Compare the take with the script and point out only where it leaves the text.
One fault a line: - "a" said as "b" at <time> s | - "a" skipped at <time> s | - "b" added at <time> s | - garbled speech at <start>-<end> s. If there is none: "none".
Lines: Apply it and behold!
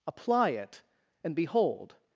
none